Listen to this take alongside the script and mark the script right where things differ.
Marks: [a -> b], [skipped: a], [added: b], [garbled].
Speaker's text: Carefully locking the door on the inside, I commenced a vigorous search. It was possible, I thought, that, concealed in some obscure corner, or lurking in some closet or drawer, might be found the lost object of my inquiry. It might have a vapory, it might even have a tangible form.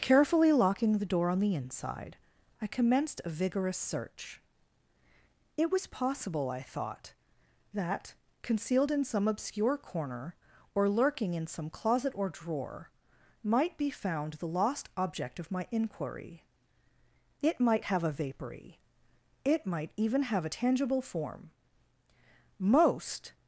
Carefully locking the door on the inside, I commenced a vigorous search. It was possible, I thought, that, concealed in some obscure corner, or lurking in some closet or drawer, might be found the lost object of my inquiry. It might have a vapory, it might even have a tangible form. [added: Most]